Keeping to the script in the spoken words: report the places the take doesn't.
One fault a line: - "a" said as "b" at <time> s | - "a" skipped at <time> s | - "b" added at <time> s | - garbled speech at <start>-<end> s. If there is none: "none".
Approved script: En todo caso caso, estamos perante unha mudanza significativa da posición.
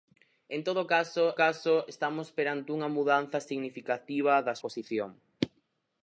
none